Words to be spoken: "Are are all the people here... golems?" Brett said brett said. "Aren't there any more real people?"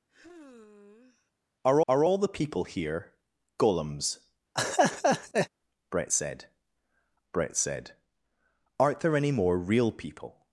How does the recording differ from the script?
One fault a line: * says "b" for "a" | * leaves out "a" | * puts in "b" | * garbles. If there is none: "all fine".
all fine